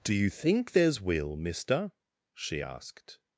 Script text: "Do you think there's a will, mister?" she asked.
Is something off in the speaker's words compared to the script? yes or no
yes